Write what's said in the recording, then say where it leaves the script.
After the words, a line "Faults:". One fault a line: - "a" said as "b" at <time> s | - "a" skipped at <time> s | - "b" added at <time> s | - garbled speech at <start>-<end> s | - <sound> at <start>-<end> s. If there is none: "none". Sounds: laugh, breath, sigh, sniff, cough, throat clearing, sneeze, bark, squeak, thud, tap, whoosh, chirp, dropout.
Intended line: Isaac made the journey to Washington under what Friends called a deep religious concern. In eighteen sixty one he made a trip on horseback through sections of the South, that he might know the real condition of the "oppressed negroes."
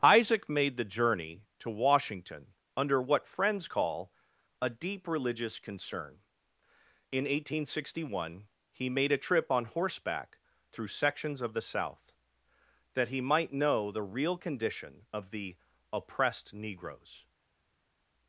Isaac made the journey to Washington under what Friends call a deep religious concern. In eighteen sixty one he made a trip on horseback through sections of the South, that he might know the real condition of the "oppressed negroes."
Faults:
- "called" said as "call" at 3.6 s